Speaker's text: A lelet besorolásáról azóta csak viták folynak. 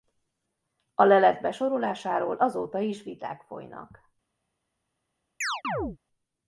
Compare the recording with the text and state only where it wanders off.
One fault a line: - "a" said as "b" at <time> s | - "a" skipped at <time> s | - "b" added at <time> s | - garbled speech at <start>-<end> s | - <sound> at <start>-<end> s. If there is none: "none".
- "csak" said as "is" at 2.8 s
- chirp at 5.4-6.0 s